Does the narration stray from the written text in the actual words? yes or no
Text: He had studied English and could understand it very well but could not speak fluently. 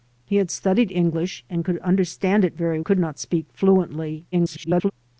yes